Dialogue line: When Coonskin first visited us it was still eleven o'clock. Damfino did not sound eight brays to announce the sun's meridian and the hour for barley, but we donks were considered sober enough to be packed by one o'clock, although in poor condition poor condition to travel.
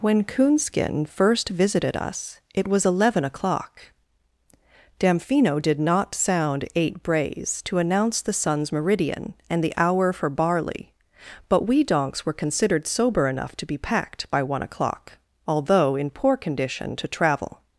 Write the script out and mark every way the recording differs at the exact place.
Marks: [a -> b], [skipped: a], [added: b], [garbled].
When Coonskin first visited us it was [skipped: still] eleven o'clock. Damfino did not sound eight brays to announce the sun's meridian and the hour for barley, but we donks were considered sober enough to be packed by one o'clock, although in poor condition [skipped: poor condition] to travel.